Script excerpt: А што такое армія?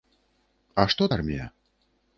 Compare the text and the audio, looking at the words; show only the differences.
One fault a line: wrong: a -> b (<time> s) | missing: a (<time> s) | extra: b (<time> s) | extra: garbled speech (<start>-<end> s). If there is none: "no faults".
missing: такое (1.0 s)